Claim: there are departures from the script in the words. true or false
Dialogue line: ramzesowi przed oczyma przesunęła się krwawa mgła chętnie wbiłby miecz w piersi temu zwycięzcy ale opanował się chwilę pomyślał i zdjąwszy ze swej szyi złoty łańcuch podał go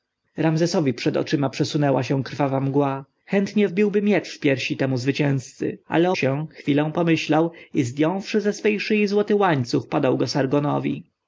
true